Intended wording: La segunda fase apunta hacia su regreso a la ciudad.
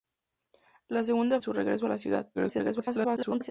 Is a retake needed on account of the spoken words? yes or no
yes